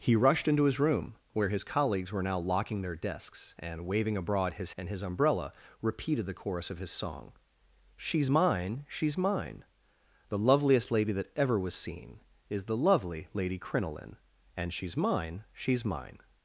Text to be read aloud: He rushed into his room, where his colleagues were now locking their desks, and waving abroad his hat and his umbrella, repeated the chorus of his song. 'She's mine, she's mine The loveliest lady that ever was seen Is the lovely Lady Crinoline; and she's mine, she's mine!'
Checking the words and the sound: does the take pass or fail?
fail